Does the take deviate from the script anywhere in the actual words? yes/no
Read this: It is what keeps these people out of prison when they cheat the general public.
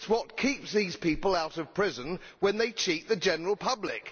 no